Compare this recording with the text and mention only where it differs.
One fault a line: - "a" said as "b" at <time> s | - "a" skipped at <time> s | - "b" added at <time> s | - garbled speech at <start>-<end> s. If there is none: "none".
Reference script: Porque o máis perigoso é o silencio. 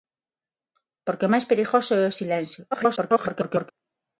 - garbled speech at 2.7-3.7 s